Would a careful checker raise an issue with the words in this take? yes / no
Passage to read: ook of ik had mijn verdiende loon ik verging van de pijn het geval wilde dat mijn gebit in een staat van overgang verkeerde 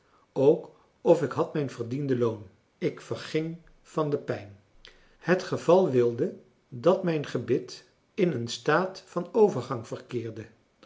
no